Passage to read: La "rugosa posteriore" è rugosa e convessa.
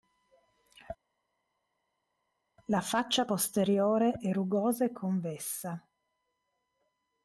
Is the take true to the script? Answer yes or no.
no